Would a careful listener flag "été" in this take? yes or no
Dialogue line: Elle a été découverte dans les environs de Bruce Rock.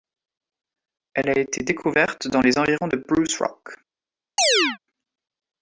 no